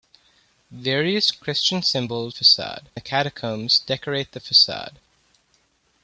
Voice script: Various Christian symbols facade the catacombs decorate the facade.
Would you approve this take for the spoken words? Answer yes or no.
yes